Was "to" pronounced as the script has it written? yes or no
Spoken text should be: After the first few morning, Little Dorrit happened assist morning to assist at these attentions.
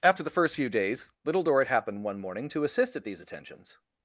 yes